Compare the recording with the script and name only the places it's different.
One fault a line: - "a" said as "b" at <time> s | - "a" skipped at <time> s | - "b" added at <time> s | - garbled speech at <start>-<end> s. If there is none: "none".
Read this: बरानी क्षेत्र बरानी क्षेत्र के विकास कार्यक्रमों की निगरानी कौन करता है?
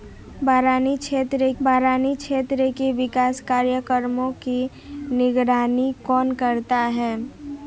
none